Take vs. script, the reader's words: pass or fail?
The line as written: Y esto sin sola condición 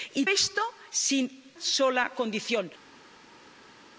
pass